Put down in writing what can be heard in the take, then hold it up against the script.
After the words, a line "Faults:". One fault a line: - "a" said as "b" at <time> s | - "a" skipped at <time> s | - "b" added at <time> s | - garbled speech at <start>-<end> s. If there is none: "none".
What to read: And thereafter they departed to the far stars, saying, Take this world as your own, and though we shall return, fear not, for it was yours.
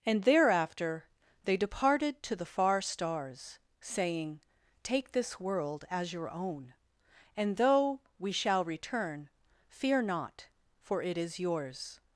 And thereafter they departed to the far stars, saying, Take this world as your own, and though we shall return, fear not, for it is yours.
Faults:
- "was" said as "is" at 11.2 s